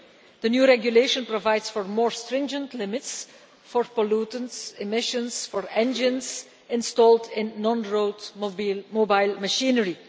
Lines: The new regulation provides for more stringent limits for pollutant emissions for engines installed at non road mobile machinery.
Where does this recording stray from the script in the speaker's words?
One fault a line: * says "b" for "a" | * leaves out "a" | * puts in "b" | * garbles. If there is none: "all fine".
* says "in" for "at"